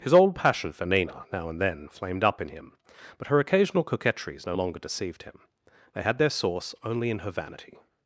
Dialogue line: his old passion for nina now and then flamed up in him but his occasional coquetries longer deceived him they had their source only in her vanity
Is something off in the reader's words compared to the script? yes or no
yes